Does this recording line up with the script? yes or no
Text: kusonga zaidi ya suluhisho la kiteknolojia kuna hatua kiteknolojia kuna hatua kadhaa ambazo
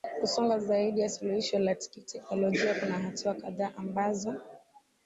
no